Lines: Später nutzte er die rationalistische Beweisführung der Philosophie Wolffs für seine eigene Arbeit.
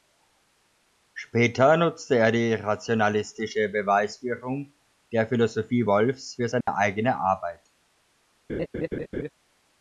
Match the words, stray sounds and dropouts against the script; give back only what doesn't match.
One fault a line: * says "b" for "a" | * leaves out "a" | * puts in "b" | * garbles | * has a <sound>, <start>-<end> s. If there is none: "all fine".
* has a dropout, 6.6-6.7 s
* has a laugh, 8.5-9.3 s